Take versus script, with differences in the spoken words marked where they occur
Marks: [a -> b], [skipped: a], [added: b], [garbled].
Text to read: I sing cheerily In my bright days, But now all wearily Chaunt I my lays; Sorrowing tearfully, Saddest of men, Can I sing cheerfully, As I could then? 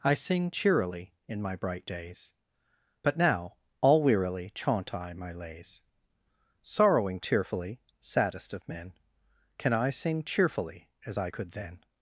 I sing cheerily In my bright days, But now all wearily Chaunt I my lays; Sorrowing tearfully, Saddest of men, Can I sing cheerfully, As I could then?